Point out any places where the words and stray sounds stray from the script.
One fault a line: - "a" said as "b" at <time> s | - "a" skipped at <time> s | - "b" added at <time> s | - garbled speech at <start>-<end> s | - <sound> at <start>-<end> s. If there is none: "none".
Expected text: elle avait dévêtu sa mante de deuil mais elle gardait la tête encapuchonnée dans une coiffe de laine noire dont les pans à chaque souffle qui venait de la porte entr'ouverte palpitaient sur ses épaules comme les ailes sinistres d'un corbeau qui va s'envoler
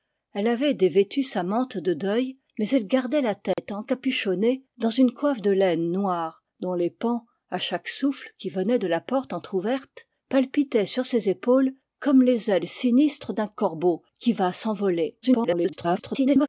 - dropout at 3.5-3.6 s
- garbled speech at 15.2-16.5 s